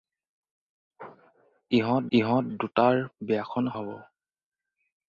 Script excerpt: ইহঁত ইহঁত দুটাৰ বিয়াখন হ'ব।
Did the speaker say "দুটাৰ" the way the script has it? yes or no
yes